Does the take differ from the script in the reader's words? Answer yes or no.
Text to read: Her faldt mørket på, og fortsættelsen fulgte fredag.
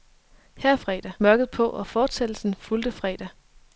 yes